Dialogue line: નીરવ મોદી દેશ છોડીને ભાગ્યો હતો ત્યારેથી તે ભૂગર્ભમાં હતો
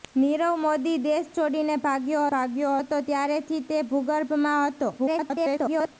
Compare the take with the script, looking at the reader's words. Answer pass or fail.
fail